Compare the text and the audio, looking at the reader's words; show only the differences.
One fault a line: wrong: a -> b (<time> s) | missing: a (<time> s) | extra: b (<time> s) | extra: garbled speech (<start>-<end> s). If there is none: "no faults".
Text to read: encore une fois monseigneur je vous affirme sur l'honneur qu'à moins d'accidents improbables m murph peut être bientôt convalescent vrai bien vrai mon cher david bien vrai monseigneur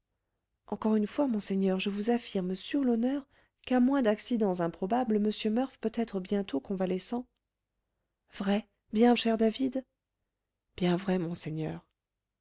missing: vrai mon (9.1 s)